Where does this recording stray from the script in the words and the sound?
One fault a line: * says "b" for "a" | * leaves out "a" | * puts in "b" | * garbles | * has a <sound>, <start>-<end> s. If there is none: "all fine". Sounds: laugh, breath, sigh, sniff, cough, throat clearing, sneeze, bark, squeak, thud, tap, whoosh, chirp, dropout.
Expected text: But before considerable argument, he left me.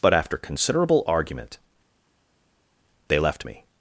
* says "after" for "before"
* says "they" for "he"